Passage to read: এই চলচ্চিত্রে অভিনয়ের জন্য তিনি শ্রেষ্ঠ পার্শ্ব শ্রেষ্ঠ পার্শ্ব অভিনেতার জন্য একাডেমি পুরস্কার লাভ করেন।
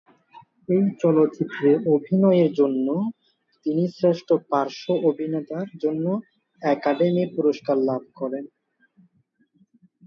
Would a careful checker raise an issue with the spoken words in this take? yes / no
yes